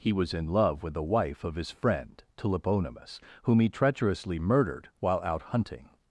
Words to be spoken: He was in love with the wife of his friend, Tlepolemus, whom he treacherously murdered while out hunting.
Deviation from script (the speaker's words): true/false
false